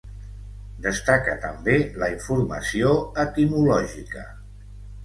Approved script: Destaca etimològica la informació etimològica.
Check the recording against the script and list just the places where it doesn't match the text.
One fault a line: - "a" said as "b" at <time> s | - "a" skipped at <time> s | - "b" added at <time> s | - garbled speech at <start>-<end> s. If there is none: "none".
- "etimològica" said as "també" at 1.4 s